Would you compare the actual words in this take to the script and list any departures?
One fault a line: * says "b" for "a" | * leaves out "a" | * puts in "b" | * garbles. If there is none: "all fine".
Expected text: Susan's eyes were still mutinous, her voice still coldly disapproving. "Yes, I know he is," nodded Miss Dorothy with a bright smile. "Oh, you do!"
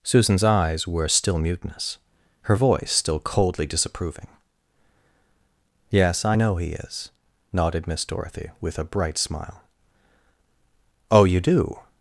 all fine